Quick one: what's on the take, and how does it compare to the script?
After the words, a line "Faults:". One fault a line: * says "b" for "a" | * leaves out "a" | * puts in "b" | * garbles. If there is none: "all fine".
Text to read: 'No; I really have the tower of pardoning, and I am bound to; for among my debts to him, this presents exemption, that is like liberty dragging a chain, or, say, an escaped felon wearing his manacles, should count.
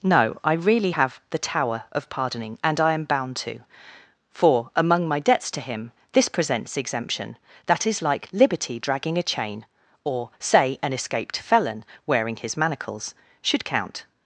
'No; I really have the tower of pardoning, and I am bound to; for among my debts to him, this presents exemption, that is like liberty dragging a chain, or, say, an escaped felon wearing his manacles, should count.
Faults:
all fine